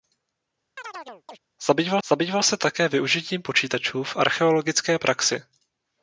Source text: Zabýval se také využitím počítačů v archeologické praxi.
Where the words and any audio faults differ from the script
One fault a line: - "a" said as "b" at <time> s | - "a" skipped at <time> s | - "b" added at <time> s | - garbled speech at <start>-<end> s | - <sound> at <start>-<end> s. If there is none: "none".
- chirp at 0.8-1.4 s
- "zabýval" added at 2.1 s